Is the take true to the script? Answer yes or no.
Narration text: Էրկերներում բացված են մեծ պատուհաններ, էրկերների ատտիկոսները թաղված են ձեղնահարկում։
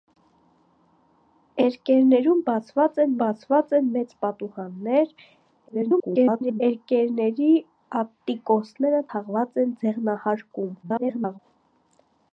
no